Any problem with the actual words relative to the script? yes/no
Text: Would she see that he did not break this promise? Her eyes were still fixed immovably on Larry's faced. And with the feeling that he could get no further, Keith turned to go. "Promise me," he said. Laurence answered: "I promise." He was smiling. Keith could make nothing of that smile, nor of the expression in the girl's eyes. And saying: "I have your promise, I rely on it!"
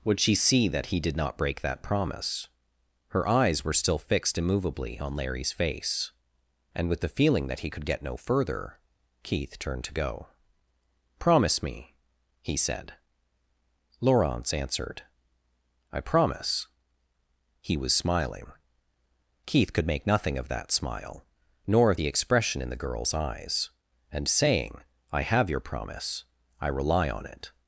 yes